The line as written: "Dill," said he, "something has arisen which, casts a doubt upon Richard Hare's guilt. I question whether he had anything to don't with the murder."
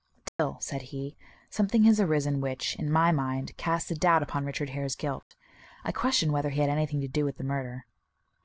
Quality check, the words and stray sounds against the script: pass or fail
fail